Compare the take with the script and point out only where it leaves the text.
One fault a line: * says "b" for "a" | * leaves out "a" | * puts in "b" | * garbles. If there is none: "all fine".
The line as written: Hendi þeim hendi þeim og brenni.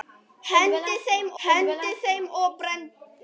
all fine